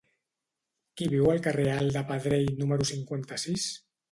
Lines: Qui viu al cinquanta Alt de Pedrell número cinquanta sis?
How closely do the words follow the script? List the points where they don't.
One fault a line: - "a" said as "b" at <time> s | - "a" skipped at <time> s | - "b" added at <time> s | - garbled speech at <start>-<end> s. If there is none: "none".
- "cinquanta" said as "carrer" at 1.5 s